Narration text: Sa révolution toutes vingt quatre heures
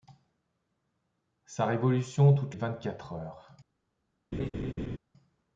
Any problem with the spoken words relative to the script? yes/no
no